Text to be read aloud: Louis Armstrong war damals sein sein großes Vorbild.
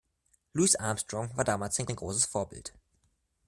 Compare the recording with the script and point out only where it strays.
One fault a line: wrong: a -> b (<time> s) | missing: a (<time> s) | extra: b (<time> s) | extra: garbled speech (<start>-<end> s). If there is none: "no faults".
no faults